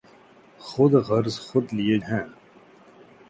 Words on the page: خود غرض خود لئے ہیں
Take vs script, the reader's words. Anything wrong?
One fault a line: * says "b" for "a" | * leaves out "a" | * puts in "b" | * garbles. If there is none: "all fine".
all fine